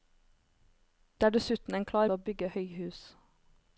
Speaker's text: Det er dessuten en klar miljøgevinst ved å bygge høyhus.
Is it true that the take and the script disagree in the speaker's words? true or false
true